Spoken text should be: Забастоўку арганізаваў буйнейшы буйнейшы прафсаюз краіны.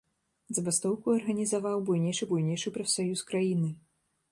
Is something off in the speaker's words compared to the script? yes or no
no